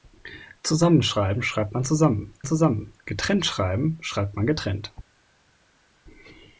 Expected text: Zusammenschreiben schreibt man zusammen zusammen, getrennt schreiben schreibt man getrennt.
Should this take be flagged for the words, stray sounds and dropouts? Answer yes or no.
no